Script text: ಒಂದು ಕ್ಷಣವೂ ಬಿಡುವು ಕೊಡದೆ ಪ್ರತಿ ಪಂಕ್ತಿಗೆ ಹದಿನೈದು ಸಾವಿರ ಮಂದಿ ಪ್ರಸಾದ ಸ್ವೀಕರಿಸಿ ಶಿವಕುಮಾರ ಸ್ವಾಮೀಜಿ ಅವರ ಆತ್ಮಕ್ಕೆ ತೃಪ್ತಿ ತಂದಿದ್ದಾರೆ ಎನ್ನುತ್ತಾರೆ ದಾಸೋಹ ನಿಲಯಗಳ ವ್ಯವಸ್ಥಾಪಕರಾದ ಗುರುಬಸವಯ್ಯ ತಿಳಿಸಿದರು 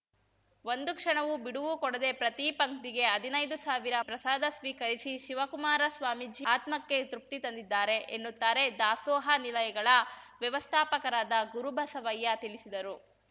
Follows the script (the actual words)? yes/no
no